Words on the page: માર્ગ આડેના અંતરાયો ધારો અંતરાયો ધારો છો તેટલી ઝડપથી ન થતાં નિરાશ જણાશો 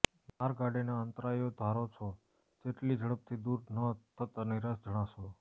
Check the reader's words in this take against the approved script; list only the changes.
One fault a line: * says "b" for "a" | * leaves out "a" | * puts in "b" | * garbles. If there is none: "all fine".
* leaves out "અંતરાયો ધારો"
* puts in "દૂર"